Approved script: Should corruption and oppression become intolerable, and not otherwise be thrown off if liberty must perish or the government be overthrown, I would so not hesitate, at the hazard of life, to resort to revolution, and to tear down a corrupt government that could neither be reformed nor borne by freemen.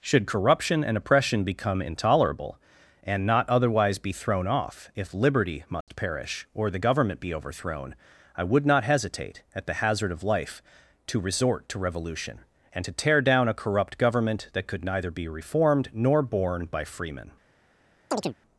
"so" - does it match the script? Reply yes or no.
no